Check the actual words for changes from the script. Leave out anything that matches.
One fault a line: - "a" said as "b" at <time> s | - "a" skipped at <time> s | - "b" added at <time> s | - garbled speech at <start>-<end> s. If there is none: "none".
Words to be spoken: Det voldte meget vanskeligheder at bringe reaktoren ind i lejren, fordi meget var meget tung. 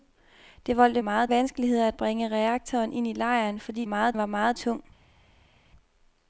none